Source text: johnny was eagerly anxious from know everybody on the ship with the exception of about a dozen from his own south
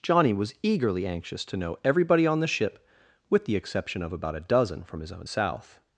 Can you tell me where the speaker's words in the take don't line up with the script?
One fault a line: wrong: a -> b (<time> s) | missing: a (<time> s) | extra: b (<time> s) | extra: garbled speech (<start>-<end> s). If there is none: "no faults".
wrong: from -> to (1.4 s)